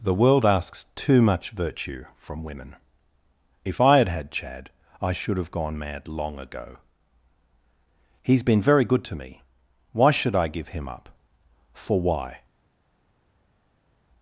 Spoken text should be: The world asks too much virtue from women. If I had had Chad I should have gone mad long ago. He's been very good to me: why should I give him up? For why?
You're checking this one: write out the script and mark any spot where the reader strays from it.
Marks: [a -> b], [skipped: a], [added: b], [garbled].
The world asks too much virtue from women. If I had had Chad I should have gone mad long ago. He's been very good to me: why should I give him up? For why?